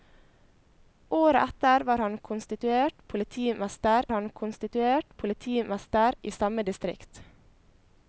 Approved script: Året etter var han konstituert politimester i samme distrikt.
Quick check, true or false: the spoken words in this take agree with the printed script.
false